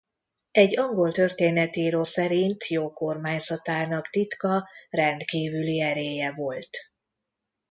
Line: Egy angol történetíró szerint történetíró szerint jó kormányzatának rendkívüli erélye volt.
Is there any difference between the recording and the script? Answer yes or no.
yes